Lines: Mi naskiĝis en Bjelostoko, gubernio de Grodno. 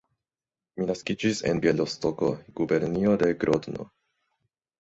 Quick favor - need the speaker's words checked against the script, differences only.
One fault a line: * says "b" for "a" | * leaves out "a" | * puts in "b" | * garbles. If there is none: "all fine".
all fine